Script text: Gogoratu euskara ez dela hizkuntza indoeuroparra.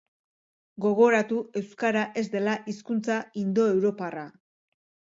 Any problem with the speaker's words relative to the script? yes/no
no